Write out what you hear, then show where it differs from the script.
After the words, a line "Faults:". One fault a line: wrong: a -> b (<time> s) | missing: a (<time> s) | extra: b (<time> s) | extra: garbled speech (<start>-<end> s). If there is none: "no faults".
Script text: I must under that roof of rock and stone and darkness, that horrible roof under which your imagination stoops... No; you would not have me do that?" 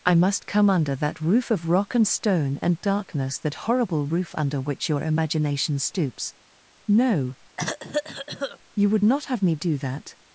I must come under that roof of rock and stone and darkness, that horrible roof under which your imagination stoops... No; you would not have me do that?"
Faults:
extra: come (0.5 s)